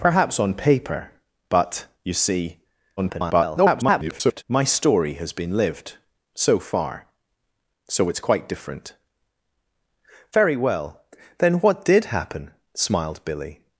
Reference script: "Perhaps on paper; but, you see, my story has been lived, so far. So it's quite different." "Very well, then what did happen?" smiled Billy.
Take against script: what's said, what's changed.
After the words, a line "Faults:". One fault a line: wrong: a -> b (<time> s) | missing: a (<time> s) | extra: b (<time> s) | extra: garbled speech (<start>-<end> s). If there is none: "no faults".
"Perhaps on paper; but, you see, [garbled] my story has been lived, so far. So it's quite different." "Very well, then what did happen?" smiled Billy.
Faults:
extra: garbled speech (3.0-4.4 s)